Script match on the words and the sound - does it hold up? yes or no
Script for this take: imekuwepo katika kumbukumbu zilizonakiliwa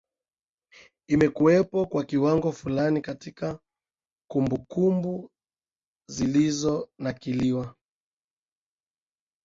no